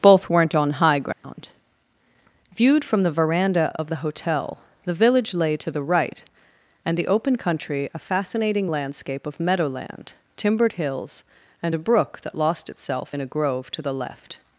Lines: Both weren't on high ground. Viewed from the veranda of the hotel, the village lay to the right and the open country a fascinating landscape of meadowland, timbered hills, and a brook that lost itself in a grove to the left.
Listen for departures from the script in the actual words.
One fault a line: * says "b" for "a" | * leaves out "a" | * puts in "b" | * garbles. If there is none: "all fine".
all fine